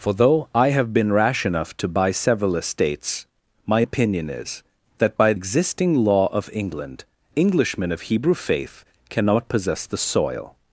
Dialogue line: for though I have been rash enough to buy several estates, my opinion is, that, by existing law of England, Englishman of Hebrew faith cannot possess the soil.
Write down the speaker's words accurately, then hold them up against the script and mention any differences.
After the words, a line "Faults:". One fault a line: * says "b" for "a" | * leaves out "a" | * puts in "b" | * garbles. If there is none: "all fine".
for though I have been rash enough to buy several estates, my opinion is, that, by existing law of England, Englishman of Hebrew faith cannot possess the soil.
Faults:
all fine